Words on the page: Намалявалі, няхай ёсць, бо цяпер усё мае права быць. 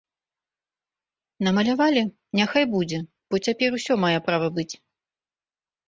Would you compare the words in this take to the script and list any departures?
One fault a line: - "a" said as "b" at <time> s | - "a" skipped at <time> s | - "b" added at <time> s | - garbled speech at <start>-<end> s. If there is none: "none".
- "ёсць" said as "будзе" at 2.7 s